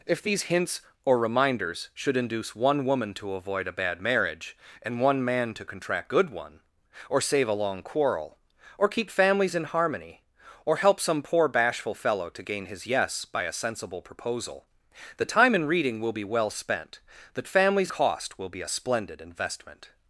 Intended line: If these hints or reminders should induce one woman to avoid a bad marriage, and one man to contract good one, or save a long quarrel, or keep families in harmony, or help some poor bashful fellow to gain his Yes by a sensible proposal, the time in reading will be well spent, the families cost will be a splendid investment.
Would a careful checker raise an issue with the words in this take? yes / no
no